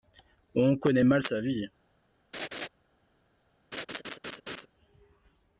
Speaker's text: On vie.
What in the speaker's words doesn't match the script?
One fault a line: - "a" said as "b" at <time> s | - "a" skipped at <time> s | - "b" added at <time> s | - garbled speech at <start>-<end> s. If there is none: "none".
- "connaît mal sa" added at 0.8 s